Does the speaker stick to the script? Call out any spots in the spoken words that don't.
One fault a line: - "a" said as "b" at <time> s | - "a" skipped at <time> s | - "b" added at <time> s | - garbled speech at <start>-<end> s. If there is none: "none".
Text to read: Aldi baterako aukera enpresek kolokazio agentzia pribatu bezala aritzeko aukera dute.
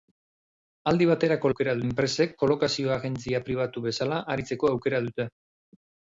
none